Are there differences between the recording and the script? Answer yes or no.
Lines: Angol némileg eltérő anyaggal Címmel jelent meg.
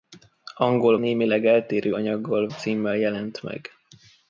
no